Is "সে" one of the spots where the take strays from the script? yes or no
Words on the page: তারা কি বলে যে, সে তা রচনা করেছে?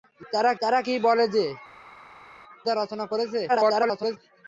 yes